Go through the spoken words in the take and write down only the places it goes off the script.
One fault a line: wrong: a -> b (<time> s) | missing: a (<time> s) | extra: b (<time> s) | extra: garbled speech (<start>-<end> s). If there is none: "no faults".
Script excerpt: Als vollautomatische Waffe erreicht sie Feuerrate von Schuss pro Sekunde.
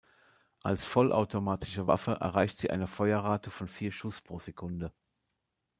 extra: eine (2.7 s)
extra: vier (3.7 s)